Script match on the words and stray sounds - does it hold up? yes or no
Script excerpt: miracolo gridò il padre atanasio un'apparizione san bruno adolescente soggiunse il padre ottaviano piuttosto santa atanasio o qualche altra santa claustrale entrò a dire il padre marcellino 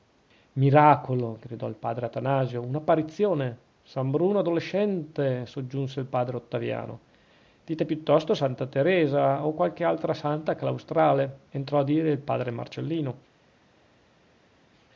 no